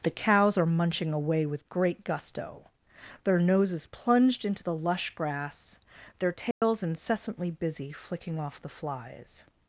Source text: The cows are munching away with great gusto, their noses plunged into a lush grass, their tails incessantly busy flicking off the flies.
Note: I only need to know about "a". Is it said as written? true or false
false